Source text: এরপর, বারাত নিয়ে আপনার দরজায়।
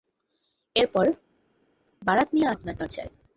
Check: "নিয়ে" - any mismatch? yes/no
no